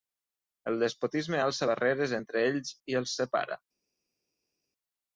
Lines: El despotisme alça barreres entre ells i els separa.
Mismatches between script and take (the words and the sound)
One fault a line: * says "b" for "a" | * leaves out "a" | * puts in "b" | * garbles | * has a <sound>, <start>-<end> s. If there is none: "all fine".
all fine